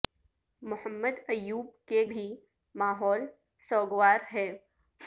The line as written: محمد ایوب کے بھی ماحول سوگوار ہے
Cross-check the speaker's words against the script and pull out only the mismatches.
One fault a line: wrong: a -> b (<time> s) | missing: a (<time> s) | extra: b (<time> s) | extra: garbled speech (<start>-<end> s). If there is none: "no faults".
no faults